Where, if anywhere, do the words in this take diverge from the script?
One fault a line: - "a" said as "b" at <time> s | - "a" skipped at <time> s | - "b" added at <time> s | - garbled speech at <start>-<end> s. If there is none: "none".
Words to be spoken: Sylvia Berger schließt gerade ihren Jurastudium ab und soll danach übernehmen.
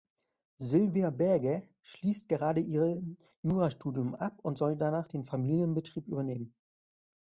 - "den Familienbetrieb" added at 5.1 s